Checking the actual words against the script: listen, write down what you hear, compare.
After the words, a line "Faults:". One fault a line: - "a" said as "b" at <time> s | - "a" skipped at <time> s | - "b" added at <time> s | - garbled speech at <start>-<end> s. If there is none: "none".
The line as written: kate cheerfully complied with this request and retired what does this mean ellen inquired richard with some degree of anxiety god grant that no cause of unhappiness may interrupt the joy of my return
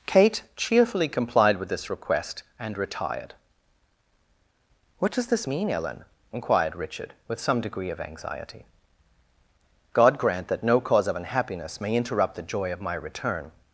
kate cheerfully complied with this request and retired what does this mean ellen inquired richard with some degree of anxiety god grant that no cause of unhappiness may interrupt the joy of my return
Faults:
none